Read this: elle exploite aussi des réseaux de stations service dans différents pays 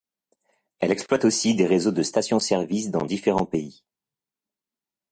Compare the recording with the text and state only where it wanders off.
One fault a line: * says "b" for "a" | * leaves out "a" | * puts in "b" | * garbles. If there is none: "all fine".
all fine